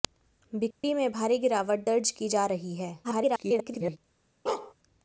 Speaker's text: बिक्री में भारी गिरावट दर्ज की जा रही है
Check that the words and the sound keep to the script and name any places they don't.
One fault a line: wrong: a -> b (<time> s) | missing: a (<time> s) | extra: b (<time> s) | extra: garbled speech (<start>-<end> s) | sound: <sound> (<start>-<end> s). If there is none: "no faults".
sound: dropout (0.7-0.8 s)
extra: garbled speech (3.0-4.0 s)
sound: bark (4.5-4.7 s)